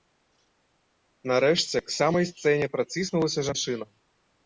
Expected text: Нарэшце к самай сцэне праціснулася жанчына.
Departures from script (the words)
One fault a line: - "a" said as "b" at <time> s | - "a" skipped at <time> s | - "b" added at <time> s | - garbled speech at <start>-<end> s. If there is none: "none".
none